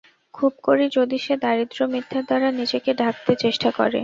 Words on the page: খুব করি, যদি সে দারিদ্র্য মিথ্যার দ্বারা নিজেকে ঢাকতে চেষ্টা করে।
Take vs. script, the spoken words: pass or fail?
pass